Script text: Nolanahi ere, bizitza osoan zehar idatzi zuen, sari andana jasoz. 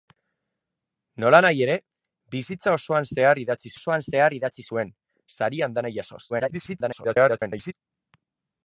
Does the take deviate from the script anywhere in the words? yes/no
yes